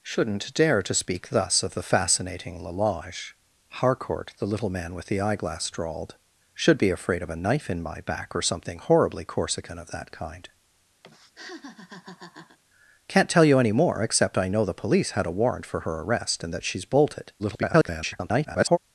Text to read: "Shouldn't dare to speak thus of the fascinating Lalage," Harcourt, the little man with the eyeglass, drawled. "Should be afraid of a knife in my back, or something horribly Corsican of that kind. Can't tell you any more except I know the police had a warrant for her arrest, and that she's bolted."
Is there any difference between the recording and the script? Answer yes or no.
yes